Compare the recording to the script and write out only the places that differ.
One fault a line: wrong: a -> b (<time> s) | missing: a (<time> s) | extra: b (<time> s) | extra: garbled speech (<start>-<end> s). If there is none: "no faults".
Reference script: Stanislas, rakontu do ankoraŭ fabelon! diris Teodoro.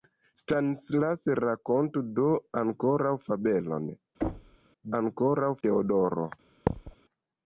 wrong: diris -> ankoraŭ (5.0 s)